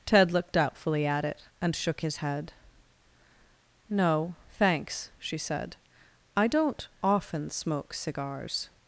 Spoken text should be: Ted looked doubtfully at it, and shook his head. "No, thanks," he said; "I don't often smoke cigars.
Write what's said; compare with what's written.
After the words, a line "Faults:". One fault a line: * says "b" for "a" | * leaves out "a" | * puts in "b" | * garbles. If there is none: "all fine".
Ted looked doubtfully at it, and shook his head. "No, thanks," she said; "I don't often smoke cigars.
Faults:
* says "she" for "he"